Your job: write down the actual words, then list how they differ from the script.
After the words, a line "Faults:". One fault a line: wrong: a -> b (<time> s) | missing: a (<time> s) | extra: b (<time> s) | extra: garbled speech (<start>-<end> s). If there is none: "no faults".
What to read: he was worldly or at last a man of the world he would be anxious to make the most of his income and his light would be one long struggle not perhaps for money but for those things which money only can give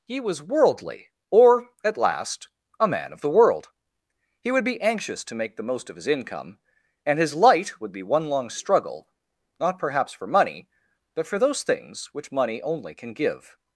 he was worldly or at last a man of the world he would be anxious to make the most of his income and his light would be one long struggle not perhaps for money but for those things which money only can give
Faults:
no faults